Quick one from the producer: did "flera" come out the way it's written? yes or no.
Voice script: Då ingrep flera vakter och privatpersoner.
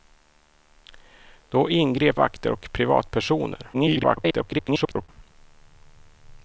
no